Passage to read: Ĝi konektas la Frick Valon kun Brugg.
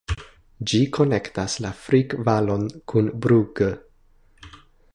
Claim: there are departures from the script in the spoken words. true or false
false